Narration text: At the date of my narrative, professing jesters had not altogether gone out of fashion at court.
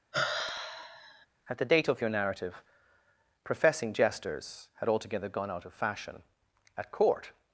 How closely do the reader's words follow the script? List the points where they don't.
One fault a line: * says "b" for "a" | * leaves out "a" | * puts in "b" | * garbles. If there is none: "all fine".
* says "your" for "my"
* leaves out "not"